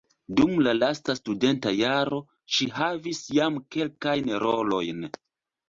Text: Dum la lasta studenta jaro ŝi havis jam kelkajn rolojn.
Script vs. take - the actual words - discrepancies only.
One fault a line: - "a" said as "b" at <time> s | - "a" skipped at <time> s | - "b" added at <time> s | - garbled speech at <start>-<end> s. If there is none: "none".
none